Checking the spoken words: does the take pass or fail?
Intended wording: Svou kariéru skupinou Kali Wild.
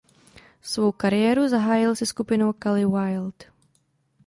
fail